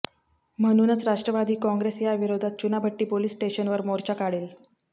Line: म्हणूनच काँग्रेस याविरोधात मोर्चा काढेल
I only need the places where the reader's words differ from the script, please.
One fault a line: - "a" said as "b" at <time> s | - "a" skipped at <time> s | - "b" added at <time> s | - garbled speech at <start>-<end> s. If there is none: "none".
- "राष्ट्रवादी" added at 1.1 s
- "चुनाभट्टी पोलीस स्टेशनवर" added at 2.6 s